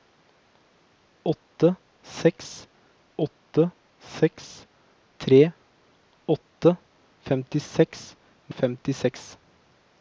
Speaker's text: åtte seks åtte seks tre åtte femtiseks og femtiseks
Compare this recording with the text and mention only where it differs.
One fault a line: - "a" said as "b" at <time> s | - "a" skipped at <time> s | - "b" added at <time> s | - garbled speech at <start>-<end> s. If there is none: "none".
none